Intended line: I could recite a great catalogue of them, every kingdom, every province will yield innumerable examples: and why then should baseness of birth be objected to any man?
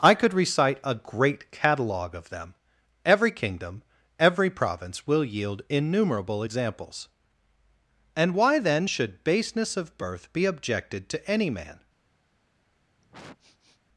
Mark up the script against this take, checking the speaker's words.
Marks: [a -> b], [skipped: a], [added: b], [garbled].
I could recite a great catalogue of them, every kingdom, every province will yield innumerable examples: and why then should baseness of birth be objected to any man?